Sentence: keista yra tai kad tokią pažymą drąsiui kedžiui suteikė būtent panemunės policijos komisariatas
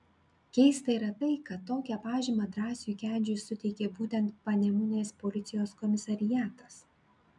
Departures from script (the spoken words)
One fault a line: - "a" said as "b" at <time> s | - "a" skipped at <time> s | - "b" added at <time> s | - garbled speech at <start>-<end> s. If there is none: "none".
none